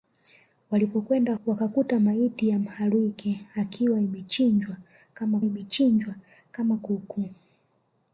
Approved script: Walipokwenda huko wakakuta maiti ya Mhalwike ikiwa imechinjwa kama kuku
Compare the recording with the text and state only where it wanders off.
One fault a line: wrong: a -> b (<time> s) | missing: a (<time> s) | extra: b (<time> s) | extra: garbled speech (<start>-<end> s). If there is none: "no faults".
missing: huko (1.3 s)
extra: imechinjwa kama (5.4 s)